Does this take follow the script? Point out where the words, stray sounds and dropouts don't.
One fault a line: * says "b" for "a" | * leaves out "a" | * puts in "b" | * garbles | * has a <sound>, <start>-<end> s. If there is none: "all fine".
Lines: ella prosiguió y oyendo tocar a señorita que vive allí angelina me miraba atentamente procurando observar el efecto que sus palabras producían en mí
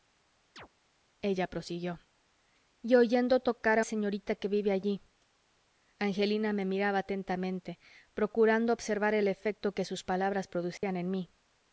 * has a chirp, 0.6-0.7 s
* has a dropout, 10.8-10.8 s